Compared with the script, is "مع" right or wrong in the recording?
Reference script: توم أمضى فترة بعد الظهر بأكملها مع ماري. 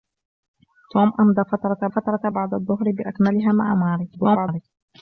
right